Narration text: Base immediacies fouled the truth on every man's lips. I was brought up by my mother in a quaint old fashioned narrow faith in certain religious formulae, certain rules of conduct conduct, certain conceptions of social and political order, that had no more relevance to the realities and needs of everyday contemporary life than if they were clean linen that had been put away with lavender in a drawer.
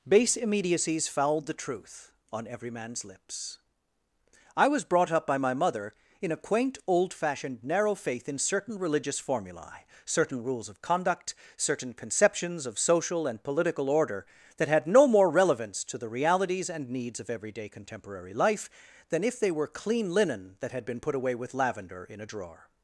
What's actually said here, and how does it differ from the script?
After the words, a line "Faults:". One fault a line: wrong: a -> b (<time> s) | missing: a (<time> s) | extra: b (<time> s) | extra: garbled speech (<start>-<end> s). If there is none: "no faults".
Base immediacies fouled the truth on every man's lips. I was brought up by my mother in a quaint old fashioned narrow faith in certain religious formulae, certain rules of conduct, certain conceptions of social and political order, that had no more relevance to the realities and needs of everyday contemporary life than if they were clean linen that had been put away with lavender in a drawer.
Faults:
missing: conduct (11.3 s)